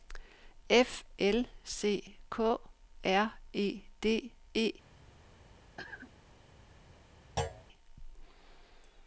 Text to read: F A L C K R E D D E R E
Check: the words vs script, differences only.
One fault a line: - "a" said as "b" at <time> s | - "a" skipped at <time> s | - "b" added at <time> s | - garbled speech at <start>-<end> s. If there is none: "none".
- "A" skipped at 1.0 s
- "D E R" skipped at 4.3 s